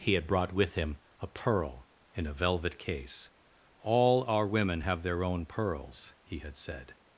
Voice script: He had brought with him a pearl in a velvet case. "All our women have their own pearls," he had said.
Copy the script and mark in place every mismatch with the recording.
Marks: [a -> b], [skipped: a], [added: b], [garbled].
He had brought with him a pearl in a velvet case. "All our women have their own pearls," he had said.